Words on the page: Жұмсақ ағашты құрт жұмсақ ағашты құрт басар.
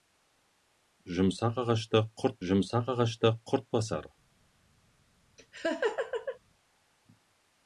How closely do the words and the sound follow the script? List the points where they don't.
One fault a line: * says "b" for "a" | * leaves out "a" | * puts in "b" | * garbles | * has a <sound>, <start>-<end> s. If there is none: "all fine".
* has a laugh, 5.4-6.4 s